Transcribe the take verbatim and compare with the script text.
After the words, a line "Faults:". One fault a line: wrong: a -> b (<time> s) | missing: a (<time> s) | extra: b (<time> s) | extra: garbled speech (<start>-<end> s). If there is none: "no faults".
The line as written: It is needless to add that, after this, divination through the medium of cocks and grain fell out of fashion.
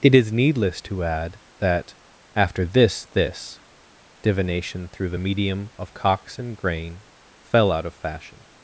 It is needless to add that, after this this, divination through the medium of cocks and grain fell out of fashion.
Faults:
extra: this (3.0 s)